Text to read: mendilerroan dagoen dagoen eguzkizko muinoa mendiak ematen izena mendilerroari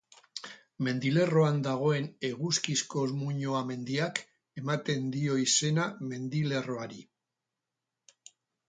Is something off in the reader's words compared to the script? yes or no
yes